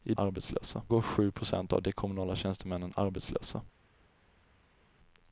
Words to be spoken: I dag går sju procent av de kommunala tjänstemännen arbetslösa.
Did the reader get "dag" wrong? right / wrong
wrong